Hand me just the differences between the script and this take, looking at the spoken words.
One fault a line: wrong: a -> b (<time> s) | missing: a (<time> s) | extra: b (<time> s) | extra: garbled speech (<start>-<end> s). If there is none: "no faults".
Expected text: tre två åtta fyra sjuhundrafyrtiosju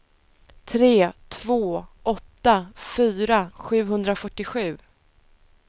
no faults